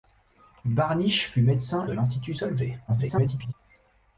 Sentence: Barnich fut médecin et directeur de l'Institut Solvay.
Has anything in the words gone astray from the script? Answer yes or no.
yes